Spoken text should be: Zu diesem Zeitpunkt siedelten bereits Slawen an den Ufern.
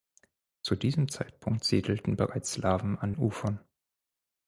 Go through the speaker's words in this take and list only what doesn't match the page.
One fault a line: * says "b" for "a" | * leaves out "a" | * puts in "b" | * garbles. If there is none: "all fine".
* leaves out "den"